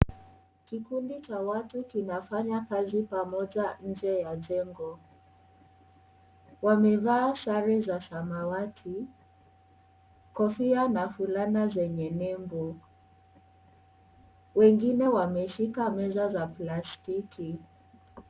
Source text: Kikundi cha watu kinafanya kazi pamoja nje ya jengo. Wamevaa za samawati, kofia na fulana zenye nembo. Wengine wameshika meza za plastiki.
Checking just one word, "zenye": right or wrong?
right